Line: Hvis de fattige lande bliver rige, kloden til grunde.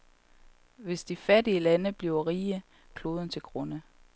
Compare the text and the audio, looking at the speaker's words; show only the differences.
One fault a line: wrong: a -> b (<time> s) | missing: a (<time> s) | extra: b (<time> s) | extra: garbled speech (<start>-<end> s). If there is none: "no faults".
no faults